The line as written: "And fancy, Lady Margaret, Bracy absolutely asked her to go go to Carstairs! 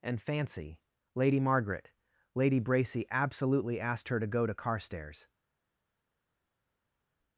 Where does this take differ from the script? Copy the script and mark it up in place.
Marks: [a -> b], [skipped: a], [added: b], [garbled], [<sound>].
"And fancy, Lady Margaret, [added: Lady] Bracy absolutely asked her to go [skipped: go] to Carstairs!